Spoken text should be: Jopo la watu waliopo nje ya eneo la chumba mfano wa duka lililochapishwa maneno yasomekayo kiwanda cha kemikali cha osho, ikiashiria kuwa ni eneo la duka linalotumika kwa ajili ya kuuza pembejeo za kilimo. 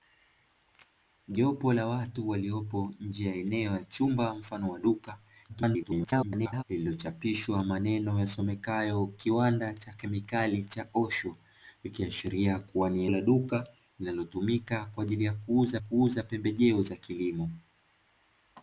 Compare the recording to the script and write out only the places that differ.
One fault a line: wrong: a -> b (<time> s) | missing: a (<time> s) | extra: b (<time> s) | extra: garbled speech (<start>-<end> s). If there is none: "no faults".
extra: garbled speech (5.5-6.6 s)
missing: eneo (13.1 s)
extra: kuuza (15.8 s)